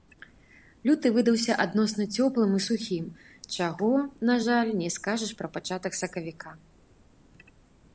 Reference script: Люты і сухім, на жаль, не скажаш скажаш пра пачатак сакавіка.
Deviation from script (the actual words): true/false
true